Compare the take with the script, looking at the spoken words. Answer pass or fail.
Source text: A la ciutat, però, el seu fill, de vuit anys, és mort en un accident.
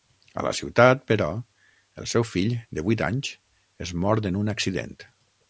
pass